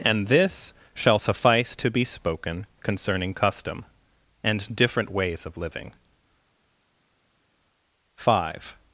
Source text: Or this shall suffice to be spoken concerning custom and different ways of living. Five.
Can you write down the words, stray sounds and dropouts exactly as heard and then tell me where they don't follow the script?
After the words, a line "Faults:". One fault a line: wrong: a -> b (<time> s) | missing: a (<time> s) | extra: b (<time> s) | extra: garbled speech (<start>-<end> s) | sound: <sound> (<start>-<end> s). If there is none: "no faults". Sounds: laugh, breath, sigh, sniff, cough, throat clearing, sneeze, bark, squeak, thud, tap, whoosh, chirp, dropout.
And this shall suffice to be spoken concerning custom and different ways of living. Five.
Faults:
wrong: Or -> And (0.0 s)